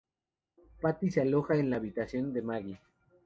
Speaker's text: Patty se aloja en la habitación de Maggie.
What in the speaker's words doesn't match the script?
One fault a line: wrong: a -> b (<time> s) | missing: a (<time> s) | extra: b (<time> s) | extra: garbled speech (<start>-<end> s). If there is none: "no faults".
no faults